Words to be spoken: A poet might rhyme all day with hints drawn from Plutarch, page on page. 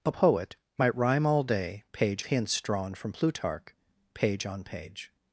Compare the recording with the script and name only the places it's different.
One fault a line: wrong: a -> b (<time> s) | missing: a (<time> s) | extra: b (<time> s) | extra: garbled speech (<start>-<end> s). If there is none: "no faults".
wrong: with -> page (1.9 s)